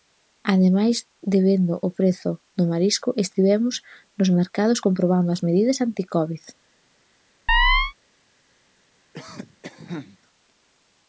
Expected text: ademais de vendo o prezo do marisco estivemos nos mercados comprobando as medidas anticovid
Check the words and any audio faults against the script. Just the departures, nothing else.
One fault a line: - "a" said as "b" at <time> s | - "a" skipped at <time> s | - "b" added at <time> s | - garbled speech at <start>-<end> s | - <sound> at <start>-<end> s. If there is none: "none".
- chirp at 7.5-7.9 s
- cough at 9.1-10.2 s